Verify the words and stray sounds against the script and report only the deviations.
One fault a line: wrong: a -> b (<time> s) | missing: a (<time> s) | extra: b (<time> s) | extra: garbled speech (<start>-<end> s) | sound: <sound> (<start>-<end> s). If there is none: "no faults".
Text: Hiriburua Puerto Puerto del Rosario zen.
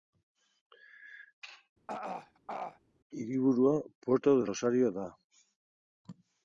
sound: throat clearing (1.9-2.8 s)
missing: Puerto (4.4 s)
wrong: zen -> da (4.9 s)